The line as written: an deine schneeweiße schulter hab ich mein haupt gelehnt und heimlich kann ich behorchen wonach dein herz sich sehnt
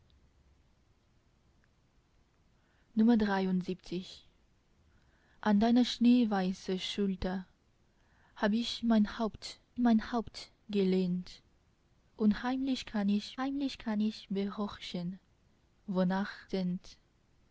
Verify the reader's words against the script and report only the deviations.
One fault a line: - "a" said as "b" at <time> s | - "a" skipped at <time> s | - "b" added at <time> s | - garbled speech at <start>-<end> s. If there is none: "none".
- "mein haupt" added at 9.8 s
- "behorchen wonach dein herz sich" said as "heimlich kann ich behorchen wonach" at 13.4 s